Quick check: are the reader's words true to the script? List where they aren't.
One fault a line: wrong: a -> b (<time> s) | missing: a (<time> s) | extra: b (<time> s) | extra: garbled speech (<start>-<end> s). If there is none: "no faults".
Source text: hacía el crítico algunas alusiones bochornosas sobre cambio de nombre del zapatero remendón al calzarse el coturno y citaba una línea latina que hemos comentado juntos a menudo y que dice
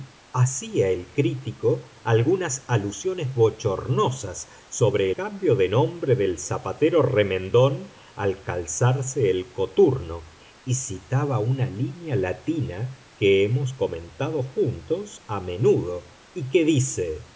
no faults